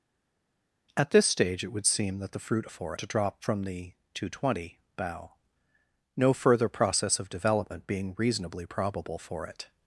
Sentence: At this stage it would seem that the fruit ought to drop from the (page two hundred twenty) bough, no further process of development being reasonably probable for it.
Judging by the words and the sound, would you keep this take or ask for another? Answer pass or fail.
fail